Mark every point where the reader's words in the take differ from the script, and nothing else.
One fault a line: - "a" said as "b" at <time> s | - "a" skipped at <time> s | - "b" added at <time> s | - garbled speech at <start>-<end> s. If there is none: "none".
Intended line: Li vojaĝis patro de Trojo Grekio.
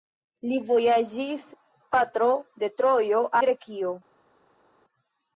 none